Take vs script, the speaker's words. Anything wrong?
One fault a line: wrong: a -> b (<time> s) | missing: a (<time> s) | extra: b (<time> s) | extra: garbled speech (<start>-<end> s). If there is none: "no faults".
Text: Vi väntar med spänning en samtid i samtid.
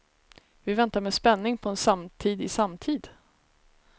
extra: på (1.6 s)